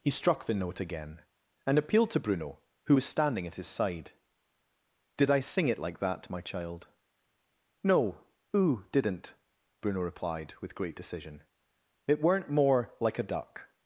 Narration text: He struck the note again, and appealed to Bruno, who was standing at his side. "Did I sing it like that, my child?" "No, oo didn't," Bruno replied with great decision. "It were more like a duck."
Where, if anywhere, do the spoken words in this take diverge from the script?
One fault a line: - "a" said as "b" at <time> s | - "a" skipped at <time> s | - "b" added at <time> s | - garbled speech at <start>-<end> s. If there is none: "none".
- "were" said as "weren't" at 12.2 s